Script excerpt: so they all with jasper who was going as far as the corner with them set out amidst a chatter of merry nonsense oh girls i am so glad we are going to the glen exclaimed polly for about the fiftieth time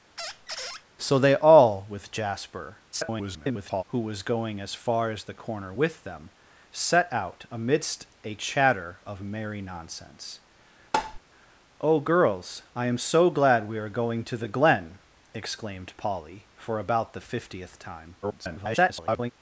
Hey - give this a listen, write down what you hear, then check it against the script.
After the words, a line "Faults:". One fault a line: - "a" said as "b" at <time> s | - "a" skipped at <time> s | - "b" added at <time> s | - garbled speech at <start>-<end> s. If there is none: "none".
so they all with jasper [garbled] who was going as far as the corner with them set out amidst a chatter of merry nonsense oh girls i am so glad we are going to the glen exclaimed polly for about the fiftieth time [garbled]
Faults:
- garbled speech at 2.9-3.8 s
- garbled speech at 18.2-19.3 s